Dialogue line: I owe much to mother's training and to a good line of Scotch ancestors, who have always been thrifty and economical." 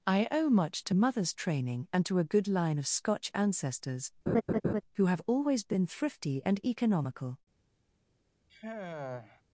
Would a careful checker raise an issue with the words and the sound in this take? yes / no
yes